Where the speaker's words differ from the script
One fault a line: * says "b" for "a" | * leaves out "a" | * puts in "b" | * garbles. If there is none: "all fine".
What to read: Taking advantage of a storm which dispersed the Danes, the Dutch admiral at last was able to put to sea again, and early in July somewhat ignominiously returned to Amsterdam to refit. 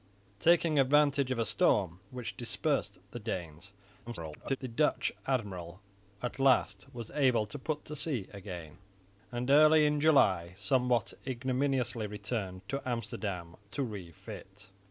* garbles